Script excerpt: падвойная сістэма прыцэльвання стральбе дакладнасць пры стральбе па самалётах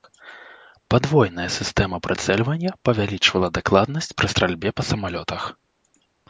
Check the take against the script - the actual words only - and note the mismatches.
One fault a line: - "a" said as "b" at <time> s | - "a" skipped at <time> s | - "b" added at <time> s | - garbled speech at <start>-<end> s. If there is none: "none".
- "стральбе" said as "павялічвала" at 2.9 s